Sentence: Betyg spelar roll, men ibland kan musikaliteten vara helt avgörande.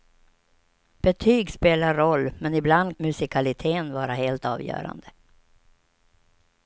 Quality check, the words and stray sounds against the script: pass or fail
fail